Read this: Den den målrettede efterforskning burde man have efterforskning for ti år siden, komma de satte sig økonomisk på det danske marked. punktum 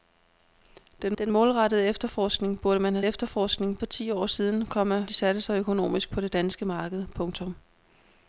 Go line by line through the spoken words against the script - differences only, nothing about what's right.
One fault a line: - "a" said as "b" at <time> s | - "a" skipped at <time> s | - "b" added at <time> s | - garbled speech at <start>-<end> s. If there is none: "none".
none